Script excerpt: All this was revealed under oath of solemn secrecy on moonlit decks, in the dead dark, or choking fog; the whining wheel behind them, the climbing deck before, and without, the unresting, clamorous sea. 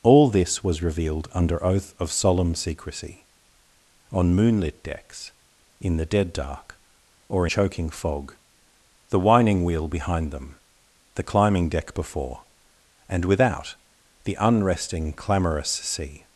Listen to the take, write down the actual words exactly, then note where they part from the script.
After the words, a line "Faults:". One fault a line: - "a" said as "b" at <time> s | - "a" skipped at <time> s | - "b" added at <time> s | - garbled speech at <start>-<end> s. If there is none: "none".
All this was revealed under oath of solemn secrecy on moonlit decks, in the dead dark, or choking fog; the whining wheel behind them, the climbing deck before, and without, the unresting, clamorous sea.
Faults:
none